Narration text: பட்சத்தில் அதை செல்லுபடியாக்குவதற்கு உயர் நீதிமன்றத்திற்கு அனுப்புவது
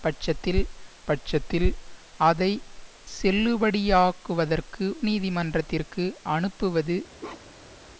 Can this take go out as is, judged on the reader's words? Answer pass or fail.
fail